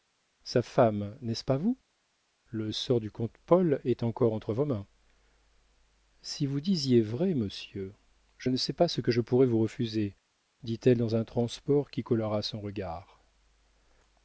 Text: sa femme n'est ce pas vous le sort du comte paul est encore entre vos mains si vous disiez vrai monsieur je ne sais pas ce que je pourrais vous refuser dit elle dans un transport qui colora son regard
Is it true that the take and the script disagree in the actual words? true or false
false